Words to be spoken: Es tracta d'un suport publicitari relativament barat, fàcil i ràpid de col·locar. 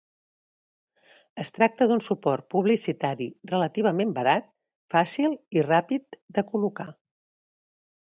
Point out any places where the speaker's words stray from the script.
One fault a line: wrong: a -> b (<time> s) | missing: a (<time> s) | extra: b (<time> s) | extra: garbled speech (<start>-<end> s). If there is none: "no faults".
no faults